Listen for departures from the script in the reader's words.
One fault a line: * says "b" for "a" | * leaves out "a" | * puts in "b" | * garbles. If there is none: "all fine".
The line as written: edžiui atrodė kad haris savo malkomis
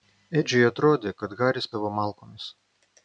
all fine